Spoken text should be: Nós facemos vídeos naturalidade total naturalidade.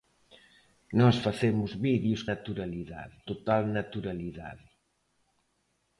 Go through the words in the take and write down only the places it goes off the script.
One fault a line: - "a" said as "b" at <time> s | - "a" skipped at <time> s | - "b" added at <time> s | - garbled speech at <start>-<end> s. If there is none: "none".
none